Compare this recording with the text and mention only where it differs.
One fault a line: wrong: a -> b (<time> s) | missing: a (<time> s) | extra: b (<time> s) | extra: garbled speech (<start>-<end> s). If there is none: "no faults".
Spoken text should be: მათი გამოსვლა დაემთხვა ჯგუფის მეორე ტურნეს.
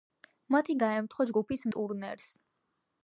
missing: გამოსვლა (0.8 s)
missing: მეორე (1.7 s)